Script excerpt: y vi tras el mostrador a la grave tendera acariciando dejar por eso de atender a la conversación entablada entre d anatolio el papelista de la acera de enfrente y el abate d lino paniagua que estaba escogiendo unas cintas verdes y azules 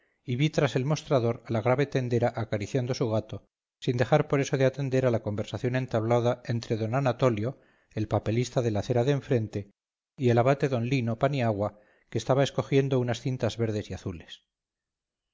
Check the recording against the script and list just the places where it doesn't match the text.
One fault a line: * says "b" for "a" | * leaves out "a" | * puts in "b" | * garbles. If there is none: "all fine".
* puts in "su gato sin"